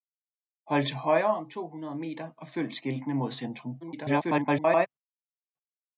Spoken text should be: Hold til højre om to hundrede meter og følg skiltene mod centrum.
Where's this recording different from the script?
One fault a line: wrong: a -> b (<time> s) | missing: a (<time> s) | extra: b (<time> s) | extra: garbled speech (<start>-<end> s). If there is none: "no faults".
extra: garbled speech (3.8-4.9 s)